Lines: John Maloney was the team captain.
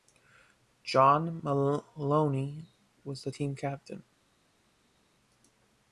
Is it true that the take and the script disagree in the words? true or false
false